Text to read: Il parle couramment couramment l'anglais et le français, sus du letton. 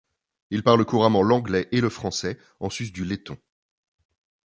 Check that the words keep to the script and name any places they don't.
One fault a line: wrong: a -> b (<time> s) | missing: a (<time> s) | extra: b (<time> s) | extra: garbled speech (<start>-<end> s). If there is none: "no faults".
missing: couramment (1.2 s)
extra: en (2.6 s)